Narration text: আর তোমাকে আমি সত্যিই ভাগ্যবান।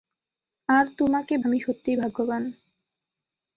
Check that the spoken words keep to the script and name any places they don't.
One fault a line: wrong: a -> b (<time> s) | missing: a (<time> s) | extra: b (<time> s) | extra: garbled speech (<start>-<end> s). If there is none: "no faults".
no faults